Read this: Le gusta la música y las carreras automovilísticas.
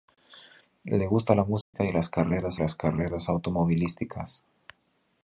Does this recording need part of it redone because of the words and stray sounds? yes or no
yes